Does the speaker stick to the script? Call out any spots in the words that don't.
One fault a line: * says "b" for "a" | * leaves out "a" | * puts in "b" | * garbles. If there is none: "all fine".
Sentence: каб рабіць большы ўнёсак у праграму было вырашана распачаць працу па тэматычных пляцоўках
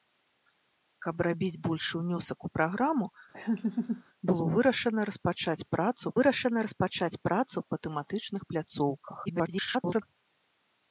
* puts in "вырашана распачаць працу"
* garbles